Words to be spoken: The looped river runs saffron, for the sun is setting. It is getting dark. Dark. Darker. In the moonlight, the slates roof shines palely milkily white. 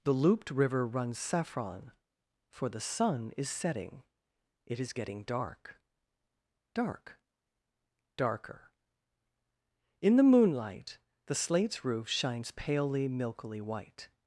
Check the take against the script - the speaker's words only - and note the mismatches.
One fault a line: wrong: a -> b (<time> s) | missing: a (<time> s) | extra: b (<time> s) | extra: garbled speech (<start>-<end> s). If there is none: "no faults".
no faults